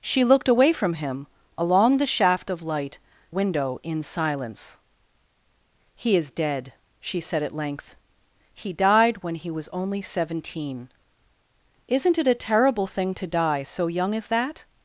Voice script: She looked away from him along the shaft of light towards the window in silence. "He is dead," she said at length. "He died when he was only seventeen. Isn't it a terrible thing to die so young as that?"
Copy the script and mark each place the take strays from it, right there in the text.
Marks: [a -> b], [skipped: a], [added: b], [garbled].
She looked away from him along the shaft of light [skipped: towards the] window in silence. "He is dead," she said at length. "He died when he was only seventeen. Isn't it a terrible thing to die so young as that?"